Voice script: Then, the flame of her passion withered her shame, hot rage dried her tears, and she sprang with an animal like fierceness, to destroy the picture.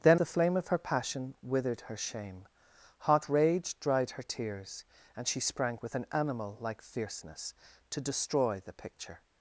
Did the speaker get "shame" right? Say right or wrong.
right